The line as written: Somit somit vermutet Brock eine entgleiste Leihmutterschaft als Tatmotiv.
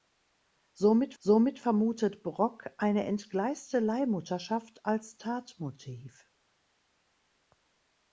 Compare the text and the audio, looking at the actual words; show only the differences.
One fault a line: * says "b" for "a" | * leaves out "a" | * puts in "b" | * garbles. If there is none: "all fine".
all fine